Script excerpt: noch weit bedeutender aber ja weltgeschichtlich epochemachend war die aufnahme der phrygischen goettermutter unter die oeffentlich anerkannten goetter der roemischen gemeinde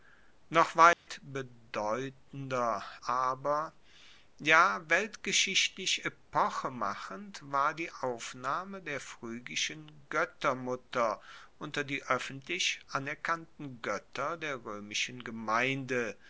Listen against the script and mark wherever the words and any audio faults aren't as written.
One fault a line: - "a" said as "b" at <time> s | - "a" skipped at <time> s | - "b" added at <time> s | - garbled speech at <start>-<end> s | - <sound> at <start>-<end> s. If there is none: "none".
- dropout at 0.9-1.1 s